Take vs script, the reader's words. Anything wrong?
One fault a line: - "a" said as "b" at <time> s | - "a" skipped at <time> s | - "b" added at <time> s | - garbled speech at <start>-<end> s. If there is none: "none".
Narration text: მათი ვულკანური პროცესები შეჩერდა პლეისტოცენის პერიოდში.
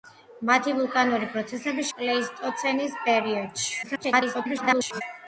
- "შეჩერდა" skipped at 1.9 s
- garbled speech at 3.8-5.0 s